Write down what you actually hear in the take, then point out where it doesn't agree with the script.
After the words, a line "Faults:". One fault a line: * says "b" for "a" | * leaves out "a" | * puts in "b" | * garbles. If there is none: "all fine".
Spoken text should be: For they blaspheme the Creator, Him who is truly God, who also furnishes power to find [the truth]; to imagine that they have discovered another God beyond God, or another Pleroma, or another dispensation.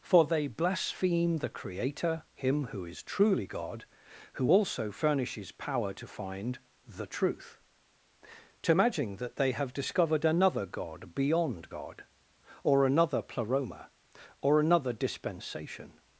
For they blaspheme the Creator, Him who is truly God, who also furnishes power to find [the truth]; to imagine that they have discovered another God beyond God, or another Pleroma, or another dispensation.
Faults:
all fine